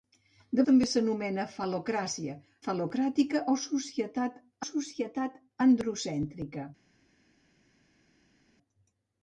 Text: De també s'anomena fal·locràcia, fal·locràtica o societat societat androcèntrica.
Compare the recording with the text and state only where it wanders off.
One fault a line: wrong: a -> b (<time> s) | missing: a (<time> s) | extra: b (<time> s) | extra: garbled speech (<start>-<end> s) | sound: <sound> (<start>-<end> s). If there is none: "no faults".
no faults